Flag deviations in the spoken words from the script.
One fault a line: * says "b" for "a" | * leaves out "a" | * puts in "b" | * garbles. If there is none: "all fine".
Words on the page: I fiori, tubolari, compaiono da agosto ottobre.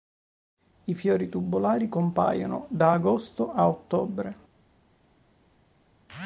* puts in "a"